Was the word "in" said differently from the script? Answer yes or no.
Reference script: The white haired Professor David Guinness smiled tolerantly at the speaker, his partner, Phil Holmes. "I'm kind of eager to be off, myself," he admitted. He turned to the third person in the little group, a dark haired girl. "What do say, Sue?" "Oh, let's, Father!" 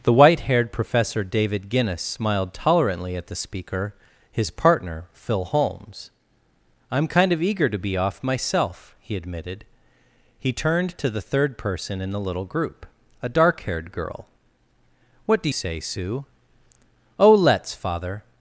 no